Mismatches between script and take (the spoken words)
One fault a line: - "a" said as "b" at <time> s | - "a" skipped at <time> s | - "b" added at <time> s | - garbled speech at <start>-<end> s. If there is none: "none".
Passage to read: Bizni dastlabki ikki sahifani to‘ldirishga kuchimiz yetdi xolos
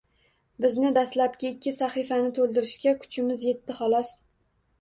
none